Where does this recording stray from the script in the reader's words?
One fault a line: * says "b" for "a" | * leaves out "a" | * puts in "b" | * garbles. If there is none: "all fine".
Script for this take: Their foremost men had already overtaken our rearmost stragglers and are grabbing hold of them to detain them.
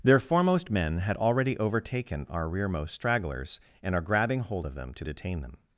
all fine